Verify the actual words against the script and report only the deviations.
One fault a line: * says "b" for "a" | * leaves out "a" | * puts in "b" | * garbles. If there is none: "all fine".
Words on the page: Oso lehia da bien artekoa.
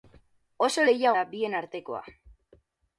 all fine